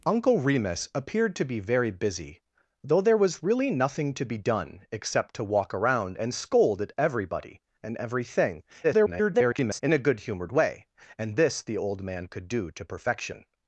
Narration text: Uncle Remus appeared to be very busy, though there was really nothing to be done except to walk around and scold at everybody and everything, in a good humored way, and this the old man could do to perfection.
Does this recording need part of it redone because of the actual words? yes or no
yes